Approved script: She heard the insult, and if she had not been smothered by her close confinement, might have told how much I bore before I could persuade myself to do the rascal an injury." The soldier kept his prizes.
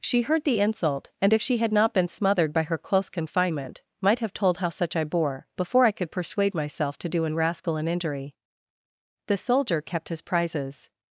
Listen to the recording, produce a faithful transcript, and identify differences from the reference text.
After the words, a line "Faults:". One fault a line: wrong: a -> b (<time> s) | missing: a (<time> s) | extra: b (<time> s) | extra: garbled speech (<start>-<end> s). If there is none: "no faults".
She heard the insult, and if she had not been smothered by her close confinement, might have told how such I bore before I could persuade myself to do an rascal an injury." The soldier kept his prizes.
Faults:
wrong: much -> such (4.7 s)
wrong: the -> an (7.2 s)